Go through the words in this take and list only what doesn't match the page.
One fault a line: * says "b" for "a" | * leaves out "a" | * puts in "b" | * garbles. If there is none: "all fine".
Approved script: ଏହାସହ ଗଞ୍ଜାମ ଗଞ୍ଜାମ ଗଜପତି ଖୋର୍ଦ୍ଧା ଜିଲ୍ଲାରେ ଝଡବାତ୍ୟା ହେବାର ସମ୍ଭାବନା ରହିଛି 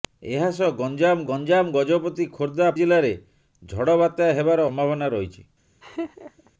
all fine